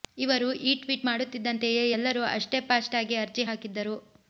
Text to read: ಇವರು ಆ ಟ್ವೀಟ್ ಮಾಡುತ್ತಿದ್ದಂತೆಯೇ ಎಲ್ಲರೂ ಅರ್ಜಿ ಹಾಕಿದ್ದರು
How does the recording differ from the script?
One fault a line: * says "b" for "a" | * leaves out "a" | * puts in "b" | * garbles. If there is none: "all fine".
* says "ಈ" for "ಆ"
* puts in "ಅಷ್ಟೇ ಫಾಸ್ಟ್ ಆಗಿ"